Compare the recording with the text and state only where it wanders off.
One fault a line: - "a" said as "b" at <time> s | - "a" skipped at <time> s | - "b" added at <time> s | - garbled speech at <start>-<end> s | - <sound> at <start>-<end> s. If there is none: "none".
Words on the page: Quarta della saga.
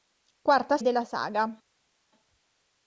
none